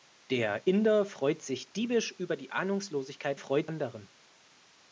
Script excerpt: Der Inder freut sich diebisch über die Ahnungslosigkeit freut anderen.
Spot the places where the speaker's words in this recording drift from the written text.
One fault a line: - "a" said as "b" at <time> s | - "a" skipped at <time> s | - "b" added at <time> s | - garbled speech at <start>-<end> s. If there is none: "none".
none